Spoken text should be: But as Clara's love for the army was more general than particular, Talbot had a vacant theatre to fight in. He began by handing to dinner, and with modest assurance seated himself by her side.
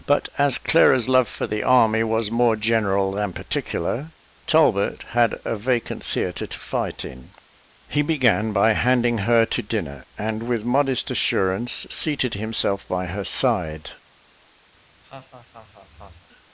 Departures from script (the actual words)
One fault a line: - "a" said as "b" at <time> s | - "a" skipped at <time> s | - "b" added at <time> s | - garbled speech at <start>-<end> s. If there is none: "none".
- "her" added at 9.3 s